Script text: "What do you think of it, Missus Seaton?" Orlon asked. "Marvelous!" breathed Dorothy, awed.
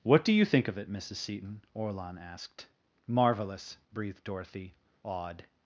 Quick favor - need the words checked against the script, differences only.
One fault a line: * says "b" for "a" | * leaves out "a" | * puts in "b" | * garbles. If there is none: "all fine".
all fine